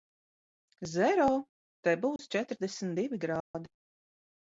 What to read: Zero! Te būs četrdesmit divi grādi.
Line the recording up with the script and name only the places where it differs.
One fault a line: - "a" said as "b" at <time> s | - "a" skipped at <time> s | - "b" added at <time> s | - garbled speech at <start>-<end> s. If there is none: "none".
none